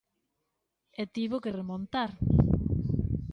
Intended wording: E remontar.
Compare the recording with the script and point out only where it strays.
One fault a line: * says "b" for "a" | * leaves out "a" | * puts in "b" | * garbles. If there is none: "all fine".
* puts in "tivo que"